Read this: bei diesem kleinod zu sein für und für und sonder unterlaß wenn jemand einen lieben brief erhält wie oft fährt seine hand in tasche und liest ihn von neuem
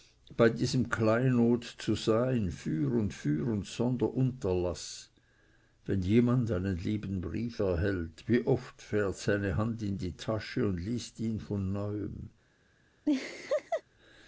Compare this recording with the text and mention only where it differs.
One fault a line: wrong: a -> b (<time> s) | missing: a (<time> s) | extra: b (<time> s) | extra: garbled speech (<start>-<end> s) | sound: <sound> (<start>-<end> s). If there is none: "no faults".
extra: die (10.0 s)
sound: laugh (13.0-13.8 s)